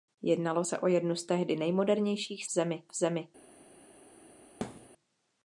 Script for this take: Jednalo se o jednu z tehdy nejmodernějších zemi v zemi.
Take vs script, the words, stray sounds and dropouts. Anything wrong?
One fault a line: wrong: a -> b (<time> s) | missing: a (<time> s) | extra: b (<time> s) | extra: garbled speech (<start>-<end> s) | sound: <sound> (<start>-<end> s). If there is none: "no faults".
sound: thud (4.6-4.9 s)